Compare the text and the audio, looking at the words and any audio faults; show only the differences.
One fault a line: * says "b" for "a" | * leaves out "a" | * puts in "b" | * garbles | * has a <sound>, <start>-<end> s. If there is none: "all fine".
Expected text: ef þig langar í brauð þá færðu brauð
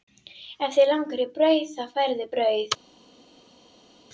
all fine